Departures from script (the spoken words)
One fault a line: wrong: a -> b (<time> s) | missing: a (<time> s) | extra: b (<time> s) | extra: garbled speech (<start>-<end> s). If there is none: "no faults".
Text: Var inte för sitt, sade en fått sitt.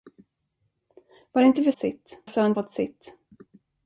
no faults